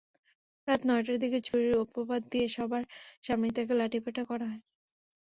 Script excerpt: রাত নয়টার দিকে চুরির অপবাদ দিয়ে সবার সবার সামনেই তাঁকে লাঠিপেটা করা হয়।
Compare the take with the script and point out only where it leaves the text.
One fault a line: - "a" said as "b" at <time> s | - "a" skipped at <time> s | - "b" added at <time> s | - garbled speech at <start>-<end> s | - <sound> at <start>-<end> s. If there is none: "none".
- dropout at 1.5-1.5 s
- "সবার" skipped at 2.8 s